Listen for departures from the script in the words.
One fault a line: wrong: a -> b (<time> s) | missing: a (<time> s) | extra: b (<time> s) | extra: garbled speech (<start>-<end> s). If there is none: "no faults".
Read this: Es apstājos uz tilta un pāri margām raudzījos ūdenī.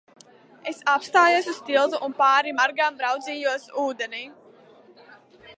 no faults